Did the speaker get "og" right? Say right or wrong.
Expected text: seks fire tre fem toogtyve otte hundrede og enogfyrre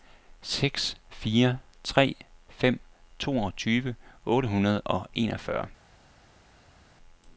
right